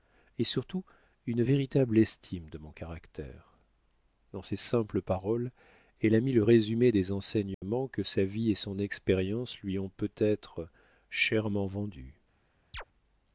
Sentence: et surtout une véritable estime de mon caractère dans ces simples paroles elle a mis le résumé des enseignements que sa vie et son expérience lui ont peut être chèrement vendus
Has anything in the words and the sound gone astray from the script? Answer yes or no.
yes